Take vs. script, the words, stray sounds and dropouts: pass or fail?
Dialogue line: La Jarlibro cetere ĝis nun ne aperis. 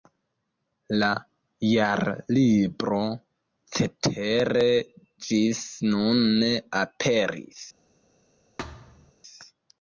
fail